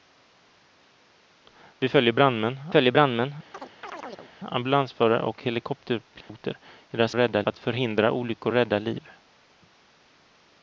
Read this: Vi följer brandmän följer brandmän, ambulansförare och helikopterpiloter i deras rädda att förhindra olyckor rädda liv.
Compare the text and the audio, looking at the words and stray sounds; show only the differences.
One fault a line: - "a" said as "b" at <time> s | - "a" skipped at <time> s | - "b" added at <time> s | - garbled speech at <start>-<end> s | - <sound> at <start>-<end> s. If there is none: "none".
- chirp at 3.5-4.3 s
- dropout at 6.2-6.3 s